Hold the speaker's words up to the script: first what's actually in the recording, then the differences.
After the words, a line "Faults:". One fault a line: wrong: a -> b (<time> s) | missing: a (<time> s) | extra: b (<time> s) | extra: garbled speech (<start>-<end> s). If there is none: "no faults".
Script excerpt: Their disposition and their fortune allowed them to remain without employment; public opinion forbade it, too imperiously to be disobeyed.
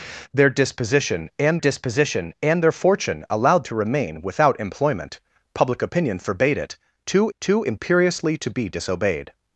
Their disposition and disposition and their fortune allowed to remain without employment; public opinion forbade it, too too imperiously to be disobeyed.
Faults:
extra: disposition and (1.6 s)
missing: them (3.6 s)
extra: too (7.4 s)